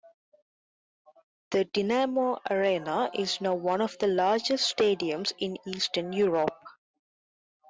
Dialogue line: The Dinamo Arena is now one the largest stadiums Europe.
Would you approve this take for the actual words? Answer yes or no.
no